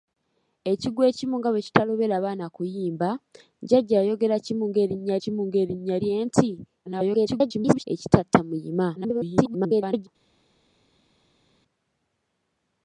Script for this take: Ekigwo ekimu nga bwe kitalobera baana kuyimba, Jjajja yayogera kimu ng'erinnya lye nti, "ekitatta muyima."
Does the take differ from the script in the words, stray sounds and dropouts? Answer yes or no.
yes